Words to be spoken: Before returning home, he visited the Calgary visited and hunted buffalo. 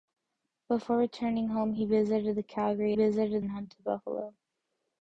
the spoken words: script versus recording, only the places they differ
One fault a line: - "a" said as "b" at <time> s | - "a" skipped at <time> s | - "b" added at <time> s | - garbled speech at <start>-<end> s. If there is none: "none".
none